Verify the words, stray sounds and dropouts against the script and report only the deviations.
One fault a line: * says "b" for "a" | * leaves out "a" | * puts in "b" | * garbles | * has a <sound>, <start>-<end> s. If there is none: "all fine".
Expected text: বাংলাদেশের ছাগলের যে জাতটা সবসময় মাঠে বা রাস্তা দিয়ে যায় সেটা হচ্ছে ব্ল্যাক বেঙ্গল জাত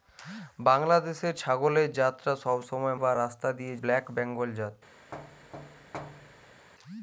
* leaves out "যে"
* leaves out "মাঠে"
* leaves out "যায় সেটা হচ্ছে"
* has a thud, 5.1-6.7 s